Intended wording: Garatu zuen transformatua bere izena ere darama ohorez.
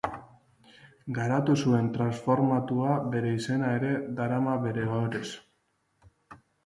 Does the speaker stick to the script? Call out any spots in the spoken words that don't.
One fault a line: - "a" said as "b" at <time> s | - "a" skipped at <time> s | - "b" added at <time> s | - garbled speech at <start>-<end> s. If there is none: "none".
- "bere" added at 4.7 s